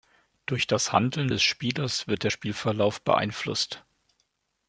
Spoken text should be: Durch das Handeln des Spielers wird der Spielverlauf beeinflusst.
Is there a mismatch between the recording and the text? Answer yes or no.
no